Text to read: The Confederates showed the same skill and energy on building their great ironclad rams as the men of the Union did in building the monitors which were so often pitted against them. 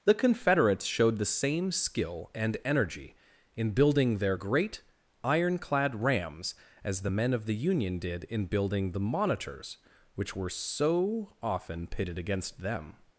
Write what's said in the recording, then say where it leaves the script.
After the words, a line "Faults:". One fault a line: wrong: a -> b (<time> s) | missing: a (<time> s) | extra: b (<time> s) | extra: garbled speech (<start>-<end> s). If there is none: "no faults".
The Confederates showed the same skill and energy in building their great ironclad rams as the men of the Union did in building the monitors which were so often pitted against them.
Faults:
wrong: on -> in (3.5 s)